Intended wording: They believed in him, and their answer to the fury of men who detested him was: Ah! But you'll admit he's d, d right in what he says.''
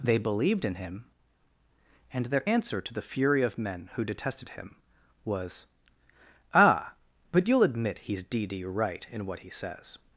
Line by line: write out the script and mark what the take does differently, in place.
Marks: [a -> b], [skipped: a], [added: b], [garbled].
They believed in him, and their answer to the fury of men who detested him was: Ah! But you'll admit he's d, d right in what he says.''